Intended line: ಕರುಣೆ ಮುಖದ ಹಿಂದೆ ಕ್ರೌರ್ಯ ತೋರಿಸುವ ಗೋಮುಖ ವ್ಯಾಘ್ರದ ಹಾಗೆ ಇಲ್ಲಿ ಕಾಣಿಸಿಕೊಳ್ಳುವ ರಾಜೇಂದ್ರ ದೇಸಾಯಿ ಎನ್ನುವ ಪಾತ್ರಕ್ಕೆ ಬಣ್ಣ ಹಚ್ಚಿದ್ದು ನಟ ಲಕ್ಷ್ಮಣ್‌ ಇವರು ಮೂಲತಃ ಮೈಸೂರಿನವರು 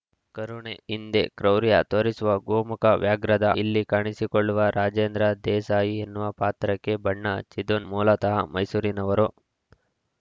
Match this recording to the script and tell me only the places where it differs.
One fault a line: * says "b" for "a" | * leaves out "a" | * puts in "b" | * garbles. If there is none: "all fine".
* leaves out "ಮುಖದ"
* leaves out "ಹಾಗೆ"
* leaves out "ನಟ ಲಕ್ಷ್ಮಣ್ ಇವರು"